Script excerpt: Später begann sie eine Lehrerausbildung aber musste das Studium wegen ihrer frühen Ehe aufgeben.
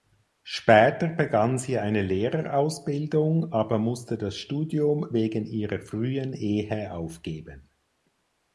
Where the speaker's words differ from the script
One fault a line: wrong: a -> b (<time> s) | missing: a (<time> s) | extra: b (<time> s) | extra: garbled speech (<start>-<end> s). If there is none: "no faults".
no faults